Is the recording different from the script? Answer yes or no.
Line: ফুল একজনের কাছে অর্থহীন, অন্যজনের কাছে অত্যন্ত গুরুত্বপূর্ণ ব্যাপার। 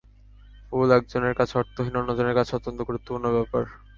no